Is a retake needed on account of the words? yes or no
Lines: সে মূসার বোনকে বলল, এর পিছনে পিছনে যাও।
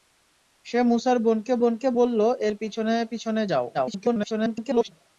yes